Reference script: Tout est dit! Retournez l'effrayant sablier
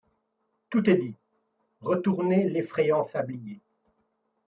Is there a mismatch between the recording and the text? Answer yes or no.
no